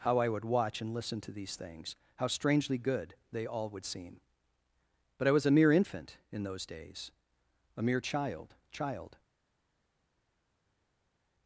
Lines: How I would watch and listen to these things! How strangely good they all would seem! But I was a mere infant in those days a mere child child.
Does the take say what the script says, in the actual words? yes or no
yes